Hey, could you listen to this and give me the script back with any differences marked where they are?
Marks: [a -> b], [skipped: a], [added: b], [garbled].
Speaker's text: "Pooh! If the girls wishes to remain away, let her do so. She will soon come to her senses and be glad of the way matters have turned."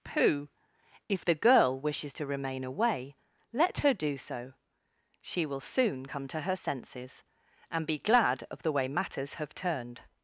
"Pooh! If the [girls -> girl] wishes to remain away, let her do so. She will soon come to her senses and be glad of the way matters have turned."